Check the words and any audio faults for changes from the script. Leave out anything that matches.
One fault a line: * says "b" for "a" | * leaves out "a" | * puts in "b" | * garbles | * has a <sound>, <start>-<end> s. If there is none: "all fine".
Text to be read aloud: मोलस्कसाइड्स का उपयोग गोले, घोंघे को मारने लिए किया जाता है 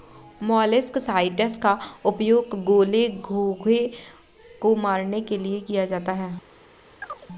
* puts in "के"
* has a chirp, 7.0-7.3 s